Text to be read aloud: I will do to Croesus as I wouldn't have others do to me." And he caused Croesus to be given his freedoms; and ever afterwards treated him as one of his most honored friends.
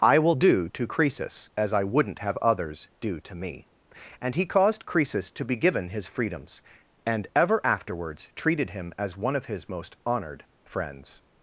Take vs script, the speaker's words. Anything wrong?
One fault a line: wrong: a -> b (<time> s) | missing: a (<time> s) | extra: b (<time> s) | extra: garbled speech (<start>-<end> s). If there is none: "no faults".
no faults